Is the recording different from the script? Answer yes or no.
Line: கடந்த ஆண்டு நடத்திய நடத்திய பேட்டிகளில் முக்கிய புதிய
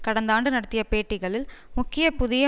yes